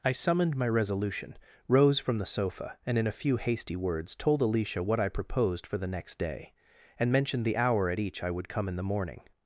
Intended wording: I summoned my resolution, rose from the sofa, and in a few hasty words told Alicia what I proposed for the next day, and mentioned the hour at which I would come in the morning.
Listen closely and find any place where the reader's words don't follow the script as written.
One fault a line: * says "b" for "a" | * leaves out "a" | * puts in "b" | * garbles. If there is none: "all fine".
* says "each" for "which"